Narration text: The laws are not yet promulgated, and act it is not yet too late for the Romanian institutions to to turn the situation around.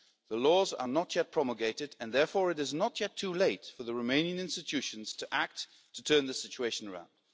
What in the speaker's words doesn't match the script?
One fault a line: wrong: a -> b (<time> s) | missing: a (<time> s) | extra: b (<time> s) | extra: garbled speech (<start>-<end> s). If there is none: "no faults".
wrong: act -> therefore (2.1 s)
extra: act (5.3 s)